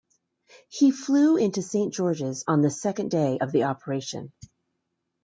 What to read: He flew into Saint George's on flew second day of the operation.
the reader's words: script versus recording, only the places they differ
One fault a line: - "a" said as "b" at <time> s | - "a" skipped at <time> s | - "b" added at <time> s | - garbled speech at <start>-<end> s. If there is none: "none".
- "flew" said as "the" at 2.6 s